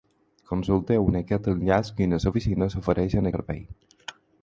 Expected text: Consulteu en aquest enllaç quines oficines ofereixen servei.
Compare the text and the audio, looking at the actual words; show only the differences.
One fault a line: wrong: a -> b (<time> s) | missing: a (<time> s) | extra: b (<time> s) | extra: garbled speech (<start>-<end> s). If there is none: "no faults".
no faults